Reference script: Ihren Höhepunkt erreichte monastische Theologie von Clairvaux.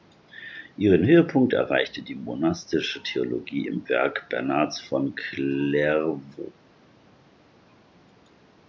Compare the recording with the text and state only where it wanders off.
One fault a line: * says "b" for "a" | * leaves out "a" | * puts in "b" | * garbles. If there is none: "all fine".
* puts in "die"
* puts in "im Werk Bernhards"